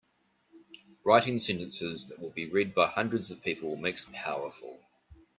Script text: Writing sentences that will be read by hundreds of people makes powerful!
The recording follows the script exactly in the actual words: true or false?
true